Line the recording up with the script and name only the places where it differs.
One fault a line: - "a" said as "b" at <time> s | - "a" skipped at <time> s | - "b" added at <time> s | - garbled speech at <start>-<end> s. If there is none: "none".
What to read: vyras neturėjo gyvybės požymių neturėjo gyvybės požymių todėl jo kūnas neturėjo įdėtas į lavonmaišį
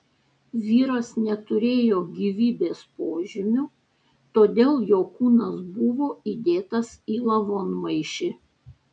- "neturėjo gyvybės požymių" skipped at 3.6 s
- "neturėjo" said as "buvo" at 5.8 s